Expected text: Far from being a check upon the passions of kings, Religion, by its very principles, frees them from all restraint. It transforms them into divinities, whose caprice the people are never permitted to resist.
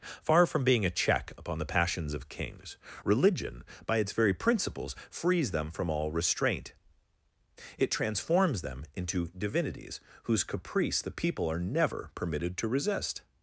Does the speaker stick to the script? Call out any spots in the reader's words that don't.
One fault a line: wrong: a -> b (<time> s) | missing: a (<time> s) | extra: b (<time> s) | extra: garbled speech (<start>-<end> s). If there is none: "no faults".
no faults